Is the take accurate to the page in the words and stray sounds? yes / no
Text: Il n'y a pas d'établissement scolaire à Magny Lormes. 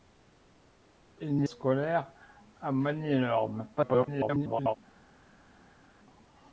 no